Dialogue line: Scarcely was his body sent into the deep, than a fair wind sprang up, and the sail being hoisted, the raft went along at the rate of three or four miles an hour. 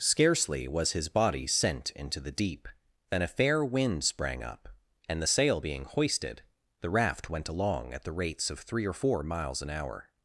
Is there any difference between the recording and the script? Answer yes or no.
yes